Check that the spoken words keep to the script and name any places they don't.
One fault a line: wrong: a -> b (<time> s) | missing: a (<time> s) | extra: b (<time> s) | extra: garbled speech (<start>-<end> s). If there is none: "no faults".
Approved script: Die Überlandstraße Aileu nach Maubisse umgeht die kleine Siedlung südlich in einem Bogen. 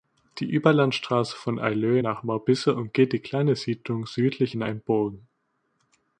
extra: von (1.4 s)